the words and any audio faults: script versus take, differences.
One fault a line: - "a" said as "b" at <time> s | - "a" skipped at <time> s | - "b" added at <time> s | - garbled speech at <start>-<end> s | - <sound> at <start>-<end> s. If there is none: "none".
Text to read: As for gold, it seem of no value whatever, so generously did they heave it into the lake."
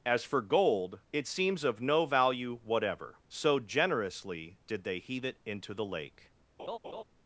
- "seem" said as "seems" at 1.3 s
- laugh at 6.6-7.0 s